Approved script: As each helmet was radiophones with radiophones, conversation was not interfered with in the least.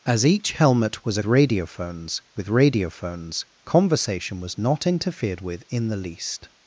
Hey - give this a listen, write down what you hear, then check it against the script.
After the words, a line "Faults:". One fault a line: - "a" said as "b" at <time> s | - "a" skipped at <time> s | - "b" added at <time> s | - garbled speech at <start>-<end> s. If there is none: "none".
As each helmet was radiophones with radiophones, conversation was not interfered with in the least.
Faults:
none